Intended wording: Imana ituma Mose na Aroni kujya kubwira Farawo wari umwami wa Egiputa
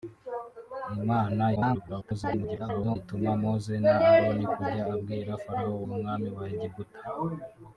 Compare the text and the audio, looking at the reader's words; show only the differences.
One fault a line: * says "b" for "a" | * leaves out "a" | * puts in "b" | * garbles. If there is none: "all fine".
* garbles
* leaves out "wari"